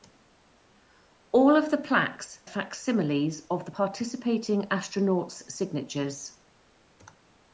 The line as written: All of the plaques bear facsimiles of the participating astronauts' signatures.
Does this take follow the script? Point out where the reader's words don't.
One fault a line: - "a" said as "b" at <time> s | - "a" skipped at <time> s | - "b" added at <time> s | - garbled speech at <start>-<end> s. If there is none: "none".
- "bear" skipped at 2.4 s